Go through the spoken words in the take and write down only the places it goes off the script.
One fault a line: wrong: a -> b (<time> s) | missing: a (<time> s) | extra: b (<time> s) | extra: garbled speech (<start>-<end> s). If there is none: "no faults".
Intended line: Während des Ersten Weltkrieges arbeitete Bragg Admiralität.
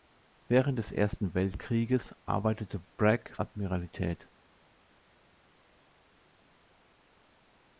no faults